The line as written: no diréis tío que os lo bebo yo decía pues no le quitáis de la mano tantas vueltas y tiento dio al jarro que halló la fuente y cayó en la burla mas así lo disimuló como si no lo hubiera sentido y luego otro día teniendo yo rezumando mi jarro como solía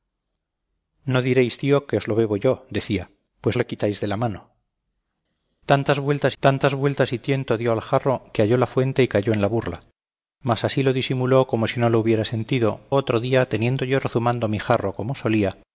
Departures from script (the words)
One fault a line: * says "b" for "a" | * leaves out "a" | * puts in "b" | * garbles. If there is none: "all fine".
* leaves out "no"
* puts in "tantas vueltas"
* leaves out "y luego"